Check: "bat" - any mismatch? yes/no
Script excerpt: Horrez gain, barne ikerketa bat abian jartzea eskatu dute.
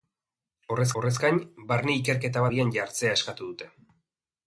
yes